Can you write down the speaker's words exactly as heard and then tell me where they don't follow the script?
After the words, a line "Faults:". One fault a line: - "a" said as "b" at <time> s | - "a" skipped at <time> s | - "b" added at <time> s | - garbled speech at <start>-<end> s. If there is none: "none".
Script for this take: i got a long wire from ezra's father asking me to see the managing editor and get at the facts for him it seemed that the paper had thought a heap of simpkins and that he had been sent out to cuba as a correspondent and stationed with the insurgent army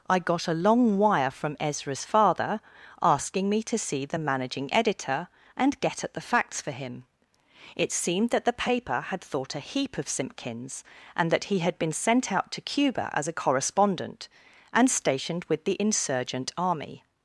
i got a long wire from ezra's father asking me to see the managing editor and get at the facts for him it seemed that the paper had thought a heap of simpkins and that he had been sent out to cuba as a correspondent and stationed with the insurgent army
Faults:
none